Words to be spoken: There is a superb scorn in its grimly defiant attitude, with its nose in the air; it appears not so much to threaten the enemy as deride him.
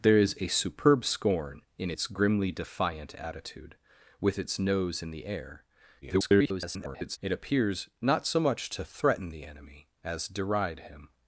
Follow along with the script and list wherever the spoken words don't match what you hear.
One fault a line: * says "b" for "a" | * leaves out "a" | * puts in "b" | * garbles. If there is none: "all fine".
* garbles